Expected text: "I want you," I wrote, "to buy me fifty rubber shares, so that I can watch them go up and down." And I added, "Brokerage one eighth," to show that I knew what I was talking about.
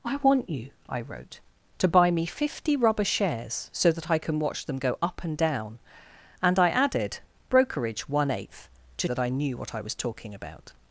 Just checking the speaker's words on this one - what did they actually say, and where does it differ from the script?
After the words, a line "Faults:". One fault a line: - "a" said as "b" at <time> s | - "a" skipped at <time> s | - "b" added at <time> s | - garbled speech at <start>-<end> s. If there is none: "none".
"I want you," I wrote, "to buy me fifty rubber shares, so that I can watch them go up and down." And I added, "Brokerage one eighth," to that I knew what I was talking about.
Faults:
- "show" skipped at 9.1 s